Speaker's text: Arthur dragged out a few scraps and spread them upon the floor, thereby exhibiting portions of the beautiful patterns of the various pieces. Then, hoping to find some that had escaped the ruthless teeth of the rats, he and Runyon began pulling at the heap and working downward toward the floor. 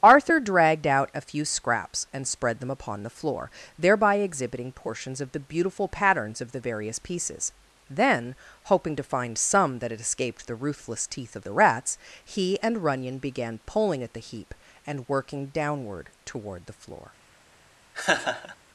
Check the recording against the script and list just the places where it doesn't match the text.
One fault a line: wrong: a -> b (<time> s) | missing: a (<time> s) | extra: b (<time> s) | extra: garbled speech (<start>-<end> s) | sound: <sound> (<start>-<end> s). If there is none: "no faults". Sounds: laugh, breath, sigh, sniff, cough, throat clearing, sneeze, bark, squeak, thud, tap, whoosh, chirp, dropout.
sound: laugh (17.9-18.6 s)